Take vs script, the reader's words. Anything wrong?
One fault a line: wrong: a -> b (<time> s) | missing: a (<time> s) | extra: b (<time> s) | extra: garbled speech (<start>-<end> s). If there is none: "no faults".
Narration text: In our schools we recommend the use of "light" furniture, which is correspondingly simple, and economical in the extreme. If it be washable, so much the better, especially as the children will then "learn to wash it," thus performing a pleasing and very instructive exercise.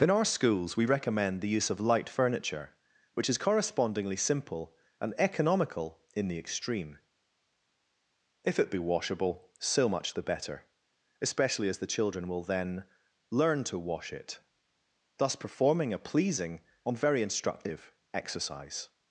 no faults